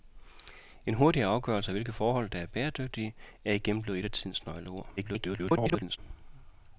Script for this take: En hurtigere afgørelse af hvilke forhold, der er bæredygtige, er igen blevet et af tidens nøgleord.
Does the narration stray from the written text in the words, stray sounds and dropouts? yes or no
yes